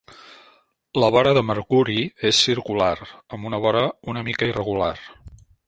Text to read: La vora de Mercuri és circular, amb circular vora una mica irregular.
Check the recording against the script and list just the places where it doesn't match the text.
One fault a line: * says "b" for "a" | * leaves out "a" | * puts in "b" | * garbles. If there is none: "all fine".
* says "una" for "circular"